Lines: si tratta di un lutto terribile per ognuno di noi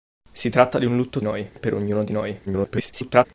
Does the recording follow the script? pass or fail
fail